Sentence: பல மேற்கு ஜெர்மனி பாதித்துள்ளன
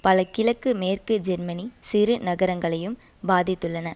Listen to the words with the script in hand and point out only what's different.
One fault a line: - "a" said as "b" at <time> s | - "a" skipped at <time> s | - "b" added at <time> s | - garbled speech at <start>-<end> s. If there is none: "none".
- "கிழக்கு" added at 0.3 s
- "சிறு நகரங்களையும்" added at 1.8 s